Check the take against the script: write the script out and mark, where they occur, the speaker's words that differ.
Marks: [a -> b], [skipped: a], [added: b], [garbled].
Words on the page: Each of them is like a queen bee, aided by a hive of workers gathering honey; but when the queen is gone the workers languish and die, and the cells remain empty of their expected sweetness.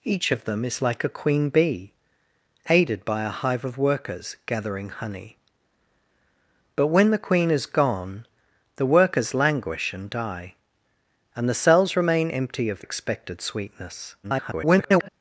Each of them is like a queen bee, aided by a hive of workers gathering honey; but when the queen is gone the workers languish and die, and the cells remain empty of [skipped: their] expected sweetness. [garbled]